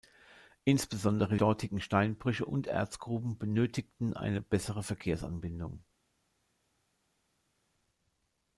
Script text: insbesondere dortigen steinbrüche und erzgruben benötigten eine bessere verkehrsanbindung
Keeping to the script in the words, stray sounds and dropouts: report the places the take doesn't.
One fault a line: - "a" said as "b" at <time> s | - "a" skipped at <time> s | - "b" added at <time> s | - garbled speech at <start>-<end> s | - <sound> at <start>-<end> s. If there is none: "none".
none